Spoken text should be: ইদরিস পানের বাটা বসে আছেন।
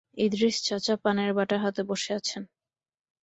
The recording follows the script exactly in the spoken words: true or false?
false